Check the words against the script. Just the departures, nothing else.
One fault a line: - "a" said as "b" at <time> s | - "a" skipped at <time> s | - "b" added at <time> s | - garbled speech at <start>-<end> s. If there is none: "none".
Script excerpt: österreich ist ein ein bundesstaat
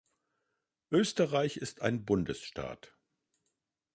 - "ein" skipped at 2.0 s